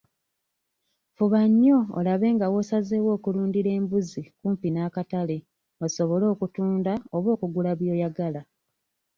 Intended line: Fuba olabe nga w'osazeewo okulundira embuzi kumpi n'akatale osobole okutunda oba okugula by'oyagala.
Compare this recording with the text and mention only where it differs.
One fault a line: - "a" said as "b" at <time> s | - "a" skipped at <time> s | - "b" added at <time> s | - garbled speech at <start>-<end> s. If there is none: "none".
- "nnyo" added at 1.5 s